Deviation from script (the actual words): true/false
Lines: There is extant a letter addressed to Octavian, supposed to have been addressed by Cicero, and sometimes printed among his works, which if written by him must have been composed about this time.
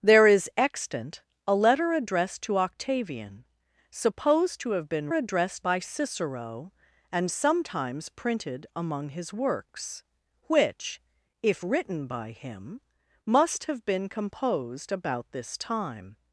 false